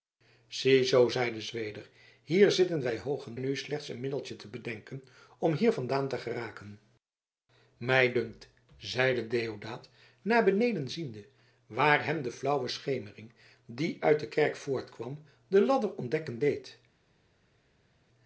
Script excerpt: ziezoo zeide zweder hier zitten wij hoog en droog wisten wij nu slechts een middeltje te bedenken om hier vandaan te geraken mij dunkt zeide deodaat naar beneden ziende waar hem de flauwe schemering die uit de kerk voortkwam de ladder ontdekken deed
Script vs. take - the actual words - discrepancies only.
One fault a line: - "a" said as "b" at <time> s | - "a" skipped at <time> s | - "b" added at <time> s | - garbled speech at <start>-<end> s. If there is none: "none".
- "droog wisten wij" skipped at 3.4 s